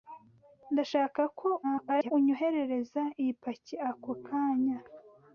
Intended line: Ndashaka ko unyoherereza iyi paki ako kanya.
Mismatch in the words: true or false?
true